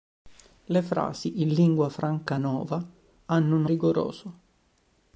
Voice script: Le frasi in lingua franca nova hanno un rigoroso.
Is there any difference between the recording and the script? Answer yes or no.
no